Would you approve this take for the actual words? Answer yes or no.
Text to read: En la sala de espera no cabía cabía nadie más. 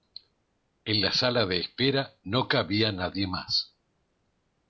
no